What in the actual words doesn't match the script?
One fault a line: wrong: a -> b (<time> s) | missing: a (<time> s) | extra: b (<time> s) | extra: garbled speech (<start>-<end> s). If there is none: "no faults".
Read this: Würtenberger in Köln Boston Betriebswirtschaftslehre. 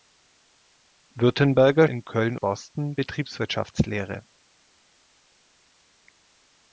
no faults